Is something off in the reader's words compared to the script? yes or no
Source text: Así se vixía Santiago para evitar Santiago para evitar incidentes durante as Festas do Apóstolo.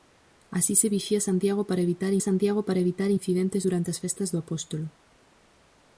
no